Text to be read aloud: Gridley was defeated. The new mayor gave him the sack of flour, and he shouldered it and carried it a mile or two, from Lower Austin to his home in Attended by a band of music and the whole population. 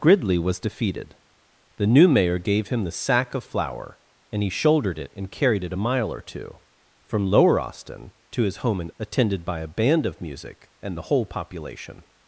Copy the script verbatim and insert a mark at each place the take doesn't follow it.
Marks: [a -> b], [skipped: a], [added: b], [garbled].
Gridley was defeated. The new mayor gave him the sack of flour, and he shouldered it and carried it a mile or two, from Lower Austin to his home in Attended by a band of music and the whole population.